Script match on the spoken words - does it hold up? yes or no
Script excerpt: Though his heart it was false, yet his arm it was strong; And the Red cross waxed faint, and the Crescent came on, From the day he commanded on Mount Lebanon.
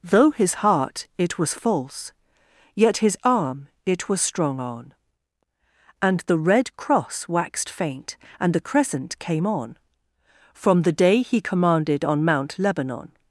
no